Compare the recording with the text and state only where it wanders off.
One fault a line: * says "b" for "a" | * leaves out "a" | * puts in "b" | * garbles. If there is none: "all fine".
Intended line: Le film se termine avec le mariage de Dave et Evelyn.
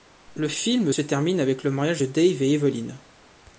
all fine